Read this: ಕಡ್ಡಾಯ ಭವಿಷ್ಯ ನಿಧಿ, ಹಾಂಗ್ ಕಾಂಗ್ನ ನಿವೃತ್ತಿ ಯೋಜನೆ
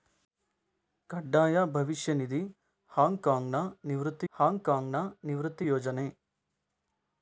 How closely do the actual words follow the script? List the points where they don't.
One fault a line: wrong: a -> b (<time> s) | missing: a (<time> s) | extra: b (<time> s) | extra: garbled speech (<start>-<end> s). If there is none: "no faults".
extra: ಹಾಂಗ್ ಕಾಂಗ್ನ ನಿವೃತ್ತಿ (4.3 s)